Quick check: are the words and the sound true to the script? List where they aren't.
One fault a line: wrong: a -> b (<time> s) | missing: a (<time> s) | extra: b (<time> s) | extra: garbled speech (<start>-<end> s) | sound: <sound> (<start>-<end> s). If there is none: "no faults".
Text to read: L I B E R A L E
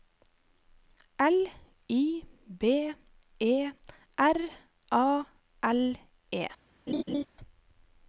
sound: laugh (6.9-7.3 s)